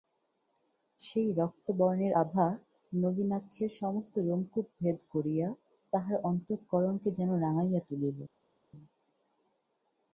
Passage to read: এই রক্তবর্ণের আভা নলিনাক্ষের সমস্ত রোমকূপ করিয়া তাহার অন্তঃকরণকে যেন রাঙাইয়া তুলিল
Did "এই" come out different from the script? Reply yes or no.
yes